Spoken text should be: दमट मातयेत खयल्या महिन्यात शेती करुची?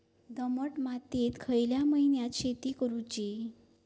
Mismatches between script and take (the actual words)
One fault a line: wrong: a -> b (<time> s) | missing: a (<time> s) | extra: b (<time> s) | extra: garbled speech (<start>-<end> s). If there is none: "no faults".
no faults